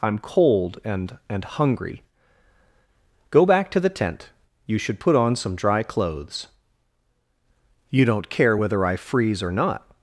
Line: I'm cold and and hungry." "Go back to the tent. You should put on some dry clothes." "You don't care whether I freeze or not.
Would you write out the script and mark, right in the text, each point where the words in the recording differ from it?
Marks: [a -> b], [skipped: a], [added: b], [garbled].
I'm cold and and hungry." "Go back to the tent. You should put on some dry clothes." "You don't care whether I freeze or not.